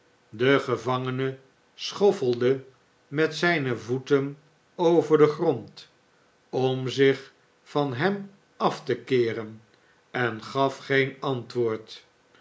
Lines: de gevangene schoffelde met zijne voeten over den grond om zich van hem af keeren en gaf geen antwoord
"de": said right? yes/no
yes